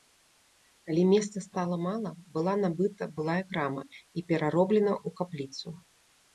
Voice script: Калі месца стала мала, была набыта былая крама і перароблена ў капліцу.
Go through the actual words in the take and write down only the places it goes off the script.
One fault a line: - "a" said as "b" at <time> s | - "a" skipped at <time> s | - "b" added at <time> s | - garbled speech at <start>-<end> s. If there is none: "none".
none